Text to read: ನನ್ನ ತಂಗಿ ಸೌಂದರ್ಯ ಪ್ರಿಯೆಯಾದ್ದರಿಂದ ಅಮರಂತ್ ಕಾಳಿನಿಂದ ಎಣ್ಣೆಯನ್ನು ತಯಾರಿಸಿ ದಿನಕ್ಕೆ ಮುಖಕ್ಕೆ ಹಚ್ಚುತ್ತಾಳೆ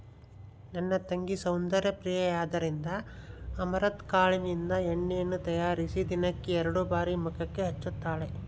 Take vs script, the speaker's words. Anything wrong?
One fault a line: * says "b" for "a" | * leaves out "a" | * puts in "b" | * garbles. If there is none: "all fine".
* puts in "ಎರಡು ಬಾರಿ"